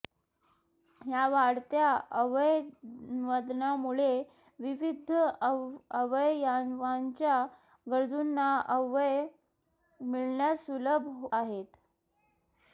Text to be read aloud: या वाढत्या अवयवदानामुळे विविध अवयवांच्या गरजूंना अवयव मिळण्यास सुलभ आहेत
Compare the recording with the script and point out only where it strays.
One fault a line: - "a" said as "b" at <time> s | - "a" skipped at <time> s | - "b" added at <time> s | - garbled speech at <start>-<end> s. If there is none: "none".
none